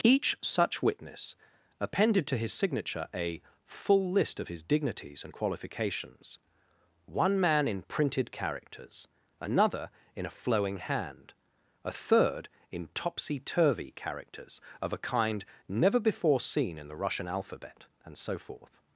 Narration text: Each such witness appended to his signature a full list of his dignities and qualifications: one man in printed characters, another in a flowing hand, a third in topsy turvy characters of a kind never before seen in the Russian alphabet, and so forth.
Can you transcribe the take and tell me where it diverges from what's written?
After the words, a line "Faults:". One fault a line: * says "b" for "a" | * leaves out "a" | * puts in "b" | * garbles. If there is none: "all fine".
Each such witness appended to his signature a full list of his dignities and qualifications: one man in printed characters, another in a flowing hand, a third in topsy turvy characters of a kind never before seen in the Russian alphabet, and so forth.
Faults:
all fine